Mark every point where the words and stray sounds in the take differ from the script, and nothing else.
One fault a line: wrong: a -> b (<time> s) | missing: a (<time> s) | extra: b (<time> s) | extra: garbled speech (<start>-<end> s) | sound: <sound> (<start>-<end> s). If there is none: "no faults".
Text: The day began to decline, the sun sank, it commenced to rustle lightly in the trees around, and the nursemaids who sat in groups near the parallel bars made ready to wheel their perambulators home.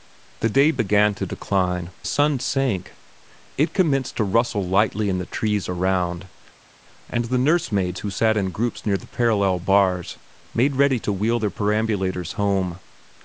missing: the (1.9 s)